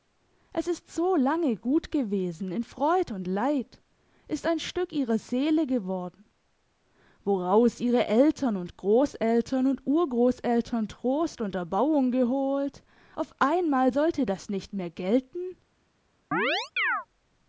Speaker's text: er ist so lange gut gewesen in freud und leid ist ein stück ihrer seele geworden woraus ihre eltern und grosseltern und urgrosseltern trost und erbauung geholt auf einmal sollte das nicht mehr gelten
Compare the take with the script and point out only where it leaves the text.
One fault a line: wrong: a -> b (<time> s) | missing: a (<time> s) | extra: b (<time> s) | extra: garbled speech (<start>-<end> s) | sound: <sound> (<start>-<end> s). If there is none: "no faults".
wrong: er -> es (0.5 s)
sound: chirp (16.3-17.1 s)